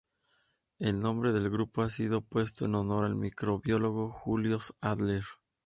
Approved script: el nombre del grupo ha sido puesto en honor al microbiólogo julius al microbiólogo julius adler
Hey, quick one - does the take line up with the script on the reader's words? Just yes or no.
no